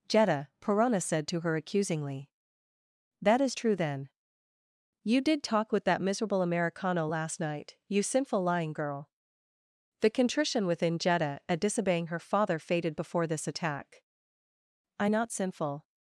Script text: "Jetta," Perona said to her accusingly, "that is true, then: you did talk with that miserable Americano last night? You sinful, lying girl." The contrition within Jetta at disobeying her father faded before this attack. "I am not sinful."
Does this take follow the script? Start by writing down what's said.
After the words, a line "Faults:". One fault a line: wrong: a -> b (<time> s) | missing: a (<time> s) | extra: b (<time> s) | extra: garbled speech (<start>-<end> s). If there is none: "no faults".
"Jetta," Perona said to her accusingly, "that is true, then: you did talk with that miserable Americano last night? You sinful, lying girl." The contrition within Jetta at disobeying her father faded before this attack. "I not sinful."
Faults:
missing: am (15.1 s)